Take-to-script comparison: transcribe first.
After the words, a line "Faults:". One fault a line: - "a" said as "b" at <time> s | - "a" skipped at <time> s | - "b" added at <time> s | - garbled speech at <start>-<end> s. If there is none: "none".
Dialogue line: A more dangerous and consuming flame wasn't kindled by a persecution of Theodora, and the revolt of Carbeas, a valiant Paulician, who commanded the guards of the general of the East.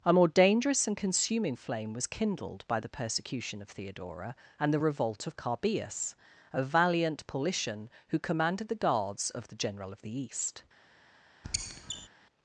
A more dangerous and consuming flame was kindled by the persecution of Theodora, and the revolt of Carbeas, a valiant Paulician, who commanded the guards of the general of the East.
Faults:
- "wasn't" said as "was" at 1.9 s
- "a" said as "the" at 2.8 s